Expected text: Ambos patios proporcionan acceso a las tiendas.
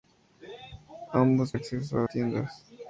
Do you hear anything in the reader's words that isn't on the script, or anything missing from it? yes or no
yes